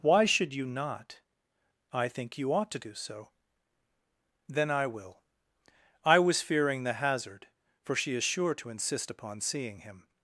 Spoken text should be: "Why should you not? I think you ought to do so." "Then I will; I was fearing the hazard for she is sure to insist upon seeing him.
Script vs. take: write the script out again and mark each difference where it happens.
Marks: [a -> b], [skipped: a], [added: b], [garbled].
"Why should you not? I think you ought to do so." "Then I will; I was fearing the hazard for she is sure to insist upon seeing him.